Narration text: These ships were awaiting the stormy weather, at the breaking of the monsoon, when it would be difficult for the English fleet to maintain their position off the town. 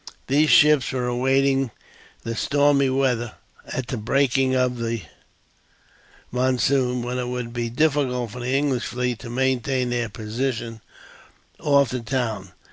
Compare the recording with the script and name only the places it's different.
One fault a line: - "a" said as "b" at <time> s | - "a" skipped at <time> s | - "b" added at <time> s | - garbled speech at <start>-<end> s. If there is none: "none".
none